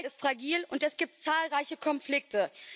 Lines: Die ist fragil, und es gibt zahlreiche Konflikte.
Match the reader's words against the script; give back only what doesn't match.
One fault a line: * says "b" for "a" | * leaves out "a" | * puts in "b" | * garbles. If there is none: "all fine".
all fine